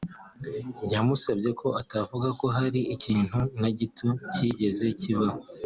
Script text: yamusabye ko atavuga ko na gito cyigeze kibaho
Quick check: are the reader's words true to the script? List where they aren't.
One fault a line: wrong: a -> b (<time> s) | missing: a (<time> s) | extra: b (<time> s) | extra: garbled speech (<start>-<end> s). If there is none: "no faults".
extra: hari ikintu (2.6 s)